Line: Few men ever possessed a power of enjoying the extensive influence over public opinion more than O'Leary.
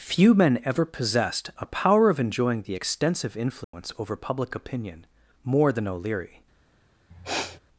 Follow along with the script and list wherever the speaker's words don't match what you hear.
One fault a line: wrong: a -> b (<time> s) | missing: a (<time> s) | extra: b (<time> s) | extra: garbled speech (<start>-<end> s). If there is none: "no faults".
no faults